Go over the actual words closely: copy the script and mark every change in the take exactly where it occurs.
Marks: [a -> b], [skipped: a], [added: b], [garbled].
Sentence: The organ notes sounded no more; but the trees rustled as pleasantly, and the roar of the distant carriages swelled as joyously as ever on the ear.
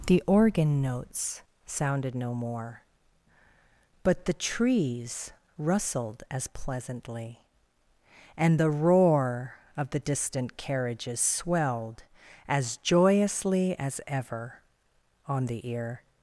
The organ notes sounded no more; but the trees rustled as pleasantly, and the roar of the distant carriages swelled as joyously as ever on the ear.